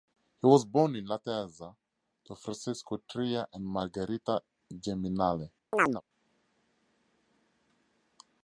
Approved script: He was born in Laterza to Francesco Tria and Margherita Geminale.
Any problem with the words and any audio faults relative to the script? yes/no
yes